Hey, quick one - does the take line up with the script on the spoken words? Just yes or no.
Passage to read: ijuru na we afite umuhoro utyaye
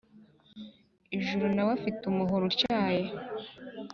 yes